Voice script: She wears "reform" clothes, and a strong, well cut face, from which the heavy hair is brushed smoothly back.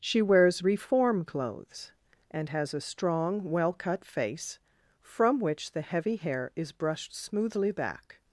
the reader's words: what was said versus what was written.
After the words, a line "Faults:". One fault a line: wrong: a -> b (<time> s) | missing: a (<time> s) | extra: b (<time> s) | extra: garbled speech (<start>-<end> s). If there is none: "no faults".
She wears "reform" clothes, and has a strong, well cut face, from which the heavy hair is brushed smoothly back.
Faults:
extra: has (2.5 s)